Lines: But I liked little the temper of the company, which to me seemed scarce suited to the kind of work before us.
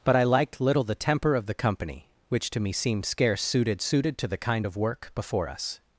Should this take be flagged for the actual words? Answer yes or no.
yes